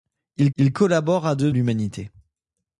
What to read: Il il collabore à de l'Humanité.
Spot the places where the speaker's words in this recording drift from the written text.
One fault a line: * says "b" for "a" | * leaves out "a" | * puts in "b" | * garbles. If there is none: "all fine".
all fine